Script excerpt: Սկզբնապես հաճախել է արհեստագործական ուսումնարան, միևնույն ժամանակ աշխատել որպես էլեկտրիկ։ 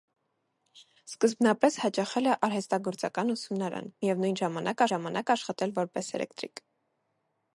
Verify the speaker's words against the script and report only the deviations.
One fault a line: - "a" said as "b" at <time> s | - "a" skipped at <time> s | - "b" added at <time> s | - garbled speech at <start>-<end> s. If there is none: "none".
- "ժամանակ" added at 4.9 s